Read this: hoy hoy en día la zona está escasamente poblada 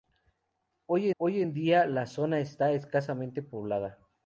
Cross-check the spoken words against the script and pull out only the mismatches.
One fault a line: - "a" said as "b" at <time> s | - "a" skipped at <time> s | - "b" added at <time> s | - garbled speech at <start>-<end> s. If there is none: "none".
none